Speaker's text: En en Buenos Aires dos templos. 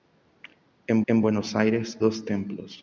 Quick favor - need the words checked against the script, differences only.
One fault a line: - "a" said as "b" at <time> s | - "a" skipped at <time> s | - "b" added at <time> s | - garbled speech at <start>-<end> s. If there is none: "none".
none